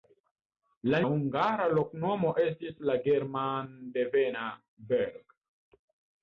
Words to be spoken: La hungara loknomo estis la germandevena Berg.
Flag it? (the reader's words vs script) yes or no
no